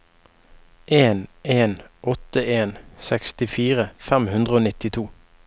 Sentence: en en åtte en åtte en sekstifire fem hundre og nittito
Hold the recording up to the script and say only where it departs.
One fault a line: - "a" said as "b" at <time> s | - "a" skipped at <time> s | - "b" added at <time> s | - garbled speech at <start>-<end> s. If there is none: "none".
- "åtte en" skipped at 2.7 s